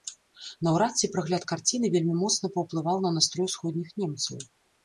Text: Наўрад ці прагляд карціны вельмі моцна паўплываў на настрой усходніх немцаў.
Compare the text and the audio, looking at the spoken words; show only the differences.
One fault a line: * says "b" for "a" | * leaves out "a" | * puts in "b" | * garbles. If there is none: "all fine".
all fine